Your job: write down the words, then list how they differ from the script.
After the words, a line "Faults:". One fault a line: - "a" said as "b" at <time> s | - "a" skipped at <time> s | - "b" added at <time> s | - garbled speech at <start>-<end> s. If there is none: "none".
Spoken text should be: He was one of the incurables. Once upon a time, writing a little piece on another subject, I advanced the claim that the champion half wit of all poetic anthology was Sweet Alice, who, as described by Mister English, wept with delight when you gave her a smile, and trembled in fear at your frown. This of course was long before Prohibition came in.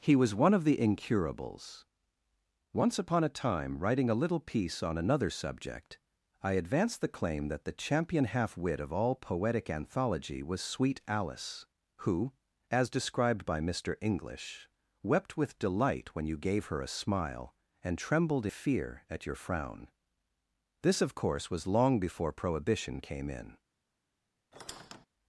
He was one of the incurables. Once upon a time, writing a little piece on another subject, I advanced the claim that the champion half wit of all poetic anthology was Sweet Alice, who, as described by Mister English, wept with delight when you gave her a smile, and trembled fear at your frown. This of course was long before Prohibition came in.
Faults:
- "in" skipped at 18.5 s